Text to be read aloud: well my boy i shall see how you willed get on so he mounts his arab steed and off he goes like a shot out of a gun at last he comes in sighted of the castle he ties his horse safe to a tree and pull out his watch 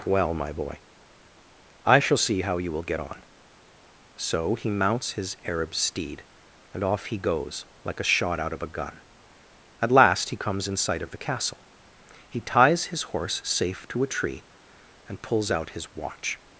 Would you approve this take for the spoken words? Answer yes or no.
no